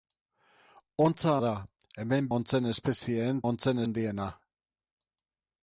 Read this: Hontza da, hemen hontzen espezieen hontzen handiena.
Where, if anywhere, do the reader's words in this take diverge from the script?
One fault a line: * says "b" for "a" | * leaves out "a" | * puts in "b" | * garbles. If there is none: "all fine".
all fine